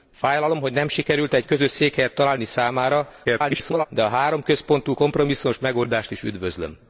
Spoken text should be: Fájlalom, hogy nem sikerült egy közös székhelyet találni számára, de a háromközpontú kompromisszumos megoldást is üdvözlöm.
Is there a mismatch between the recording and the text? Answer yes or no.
yes